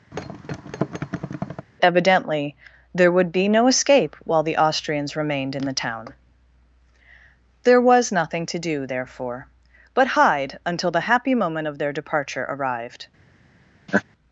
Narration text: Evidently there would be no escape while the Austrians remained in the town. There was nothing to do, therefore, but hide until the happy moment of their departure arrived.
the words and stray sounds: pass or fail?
fail